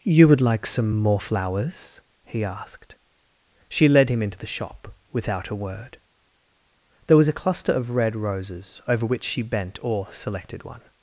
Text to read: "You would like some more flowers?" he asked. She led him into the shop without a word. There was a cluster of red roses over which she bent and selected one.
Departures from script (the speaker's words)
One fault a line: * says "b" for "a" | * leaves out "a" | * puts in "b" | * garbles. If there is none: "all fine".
* says "or" for "and"